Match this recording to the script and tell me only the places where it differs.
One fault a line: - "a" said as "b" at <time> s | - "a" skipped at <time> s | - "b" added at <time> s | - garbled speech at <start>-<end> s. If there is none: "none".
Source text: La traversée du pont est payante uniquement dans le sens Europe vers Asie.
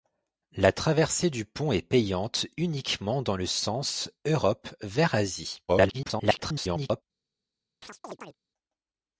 - garbled speech at 5.7-7.0 s